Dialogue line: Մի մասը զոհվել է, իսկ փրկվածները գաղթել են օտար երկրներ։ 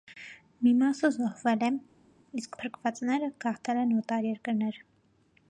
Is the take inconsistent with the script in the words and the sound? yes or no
no